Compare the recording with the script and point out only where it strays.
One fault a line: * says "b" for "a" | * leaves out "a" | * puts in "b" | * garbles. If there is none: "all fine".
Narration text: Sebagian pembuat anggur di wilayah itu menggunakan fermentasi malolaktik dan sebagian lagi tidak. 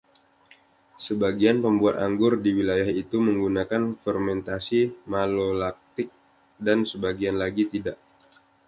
all fine